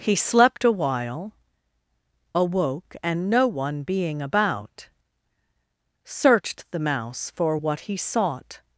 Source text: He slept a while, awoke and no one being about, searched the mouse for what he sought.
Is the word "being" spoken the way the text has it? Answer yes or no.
yes